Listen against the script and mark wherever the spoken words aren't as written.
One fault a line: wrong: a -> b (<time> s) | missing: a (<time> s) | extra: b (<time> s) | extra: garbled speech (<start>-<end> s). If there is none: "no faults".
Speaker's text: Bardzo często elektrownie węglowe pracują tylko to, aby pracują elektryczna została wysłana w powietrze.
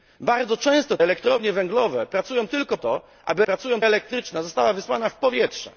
no faults